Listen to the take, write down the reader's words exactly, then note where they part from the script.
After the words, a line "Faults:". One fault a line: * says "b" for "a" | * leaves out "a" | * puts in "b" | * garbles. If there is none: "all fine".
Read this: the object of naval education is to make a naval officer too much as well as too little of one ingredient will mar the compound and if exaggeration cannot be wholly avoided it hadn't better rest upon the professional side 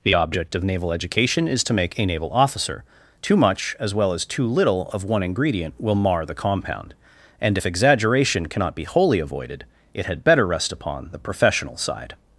the object of naval education is to make a naval officer too much as well as too little of one ingredient will mar the compound and if exaggeration cannot be wholly avoided it had better rest upon the professional side
Faults:
* says "had" for "hadn't"